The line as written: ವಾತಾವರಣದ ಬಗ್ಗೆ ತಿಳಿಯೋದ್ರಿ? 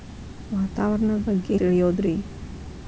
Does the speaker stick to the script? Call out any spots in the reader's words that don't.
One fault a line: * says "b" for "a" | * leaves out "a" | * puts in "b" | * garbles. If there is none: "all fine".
all fine